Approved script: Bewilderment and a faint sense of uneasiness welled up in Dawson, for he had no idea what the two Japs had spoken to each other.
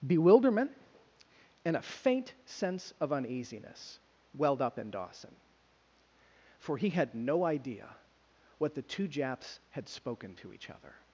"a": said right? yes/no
yes